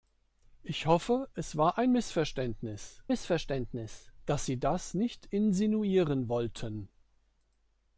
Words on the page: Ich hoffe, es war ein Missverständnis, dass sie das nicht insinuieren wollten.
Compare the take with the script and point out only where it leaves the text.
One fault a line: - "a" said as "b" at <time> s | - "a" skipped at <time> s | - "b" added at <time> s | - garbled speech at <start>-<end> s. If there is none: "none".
- "Missverständnis" added at 3.1 s